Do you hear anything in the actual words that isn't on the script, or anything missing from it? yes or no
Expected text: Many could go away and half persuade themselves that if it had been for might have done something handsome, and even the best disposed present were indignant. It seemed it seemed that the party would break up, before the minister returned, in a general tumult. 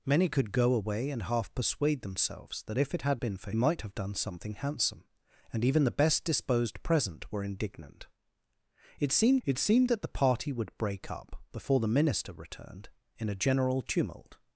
no